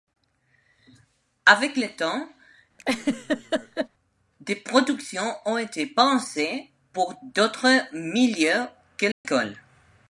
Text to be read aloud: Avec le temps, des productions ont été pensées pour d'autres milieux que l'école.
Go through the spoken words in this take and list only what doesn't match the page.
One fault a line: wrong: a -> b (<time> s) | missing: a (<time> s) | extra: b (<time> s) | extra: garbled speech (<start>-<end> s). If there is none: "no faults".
no faults